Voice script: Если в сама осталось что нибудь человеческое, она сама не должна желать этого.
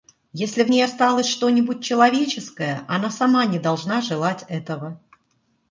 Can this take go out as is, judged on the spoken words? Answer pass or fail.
fail